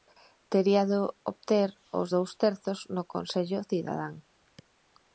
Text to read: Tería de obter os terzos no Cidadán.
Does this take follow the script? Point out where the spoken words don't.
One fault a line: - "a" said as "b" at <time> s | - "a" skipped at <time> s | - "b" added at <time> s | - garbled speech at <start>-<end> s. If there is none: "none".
- "dous" added at 2.1 s
- "Consello" added at 3.1 s